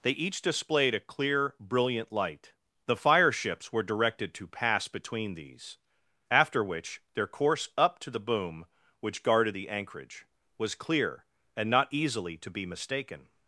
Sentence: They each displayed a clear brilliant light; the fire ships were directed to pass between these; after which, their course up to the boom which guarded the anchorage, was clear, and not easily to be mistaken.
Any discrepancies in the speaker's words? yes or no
no